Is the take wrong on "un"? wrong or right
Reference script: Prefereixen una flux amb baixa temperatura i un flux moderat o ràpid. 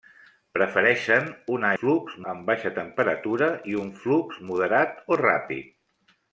right